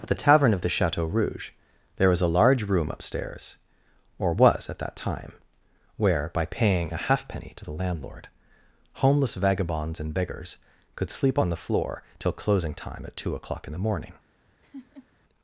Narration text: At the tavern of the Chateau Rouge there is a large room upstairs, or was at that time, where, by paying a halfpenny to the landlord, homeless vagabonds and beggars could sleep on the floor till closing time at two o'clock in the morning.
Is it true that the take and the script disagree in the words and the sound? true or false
true